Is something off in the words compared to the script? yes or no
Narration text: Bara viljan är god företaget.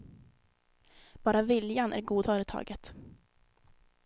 no